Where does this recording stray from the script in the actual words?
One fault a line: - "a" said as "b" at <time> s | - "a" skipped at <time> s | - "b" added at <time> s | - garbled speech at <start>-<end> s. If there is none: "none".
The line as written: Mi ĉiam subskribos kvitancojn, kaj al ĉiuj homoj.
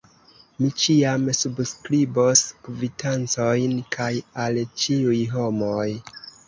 none